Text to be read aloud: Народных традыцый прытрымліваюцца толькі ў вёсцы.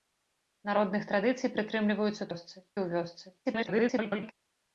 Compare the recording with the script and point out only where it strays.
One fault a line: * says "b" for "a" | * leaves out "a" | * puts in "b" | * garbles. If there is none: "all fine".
* says "вёсцы" for "толькі"
* garbles